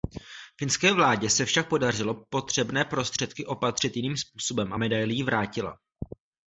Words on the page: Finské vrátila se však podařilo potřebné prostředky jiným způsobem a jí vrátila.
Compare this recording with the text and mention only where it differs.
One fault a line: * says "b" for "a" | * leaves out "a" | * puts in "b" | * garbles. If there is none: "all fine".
* says "vládě" for "vrátila"
* puts in "opatřit"
* puts in "medaili"